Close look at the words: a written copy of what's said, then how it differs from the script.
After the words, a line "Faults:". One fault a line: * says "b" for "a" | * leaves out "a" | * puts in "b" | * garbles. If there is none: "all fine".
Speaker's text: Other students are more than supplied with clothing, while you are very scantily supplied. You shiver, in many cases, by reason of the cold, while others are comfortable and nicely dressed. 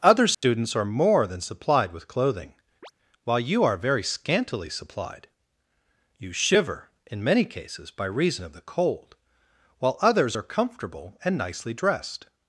Other students are more than supplied with clothing, while you are very scantily supplied. You shiver, in many cases, by reason of the cold, while others are comfortable and nicely dressed.
Faults:
all fine